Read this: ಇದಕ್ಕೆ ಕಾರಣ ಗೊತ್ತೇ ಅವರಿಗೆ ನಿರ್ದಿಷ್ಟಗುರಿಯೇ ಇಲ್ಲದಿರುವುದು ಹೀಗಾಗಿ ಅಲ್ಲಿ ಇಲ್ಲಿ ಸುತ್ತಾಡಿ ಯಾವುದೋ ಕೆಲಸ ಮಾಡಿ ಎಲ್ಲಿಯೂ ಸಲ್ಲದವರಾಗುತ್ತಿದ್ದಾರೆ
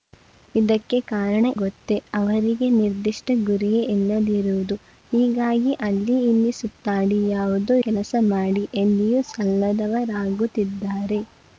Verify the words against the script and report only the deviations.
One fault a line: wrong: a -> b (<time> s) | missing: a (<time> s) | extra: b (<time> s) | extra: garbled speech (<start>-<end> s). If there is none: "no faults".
no faults